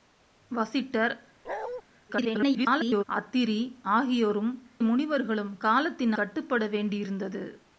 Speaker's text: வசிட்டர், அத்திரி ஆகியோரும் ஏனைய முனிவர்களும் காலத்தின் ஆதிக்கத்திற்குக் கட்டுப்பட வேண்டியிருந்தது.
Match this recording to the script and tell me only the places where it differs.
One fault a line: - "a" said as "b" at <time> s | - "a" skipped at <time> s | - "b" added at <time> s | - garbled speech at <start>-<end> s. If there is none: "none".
- garbled speech at 2.1-3.0 s
- "ஏனைய" skipped at 4.7 s
- "ஆதிக்கத்திற்குக்" skipped at 6.1 s